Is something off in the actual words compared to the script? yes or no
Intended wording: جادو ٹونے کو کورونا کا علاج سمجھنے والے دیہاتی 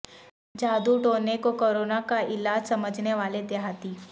no